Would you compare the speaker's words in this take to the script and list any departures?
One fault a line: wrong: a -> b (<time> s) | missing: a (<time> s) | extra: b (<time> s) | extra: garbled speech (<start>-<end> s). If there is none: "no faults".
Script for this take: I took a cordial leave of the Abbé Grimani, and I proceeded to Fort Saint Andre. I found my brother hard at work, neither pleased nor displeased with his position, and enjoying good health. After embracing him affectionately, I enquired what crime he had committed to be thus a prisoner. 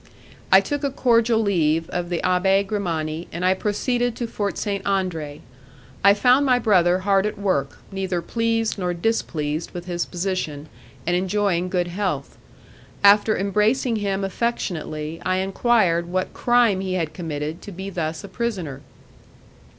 no faults